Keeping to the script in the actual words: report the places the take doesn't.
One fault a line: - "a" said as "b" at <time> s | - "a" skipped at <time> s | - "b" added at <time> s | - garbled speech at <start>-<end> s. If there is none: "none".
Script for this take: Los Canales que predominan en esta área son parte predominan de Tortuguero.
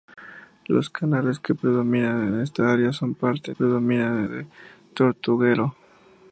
none